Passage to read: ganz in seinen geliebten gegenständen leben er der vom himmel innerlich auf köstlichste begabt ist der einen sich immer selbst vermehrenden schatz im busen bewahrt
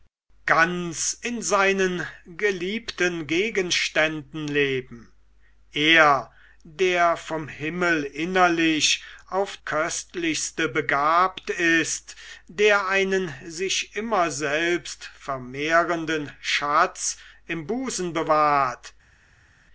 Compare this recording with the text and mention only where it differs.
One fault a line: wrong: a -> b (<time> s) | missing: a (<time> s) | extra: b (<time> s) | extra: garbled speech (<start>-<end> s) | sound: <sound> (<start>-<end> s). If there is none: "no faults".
no faults